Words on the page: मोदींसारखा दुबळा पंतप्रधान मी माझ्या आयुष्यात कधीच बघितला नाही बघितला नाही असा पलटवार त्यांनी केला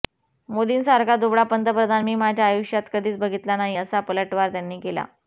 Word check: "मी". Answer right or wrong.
right